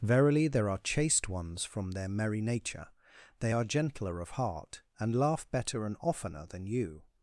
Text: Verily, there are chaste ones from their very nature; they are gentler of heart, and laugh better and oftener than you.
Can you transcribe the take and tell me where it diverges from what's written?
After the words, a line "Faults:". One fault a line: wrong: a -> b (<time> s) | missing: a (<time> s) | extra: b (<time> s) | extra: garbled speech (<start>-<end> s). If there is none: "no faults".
Verily, there are chaste ones from their merry nature; they are gentler of heart, and laugh better and oftener than you.
Faults:
wrong: very -> merry (2.1 s)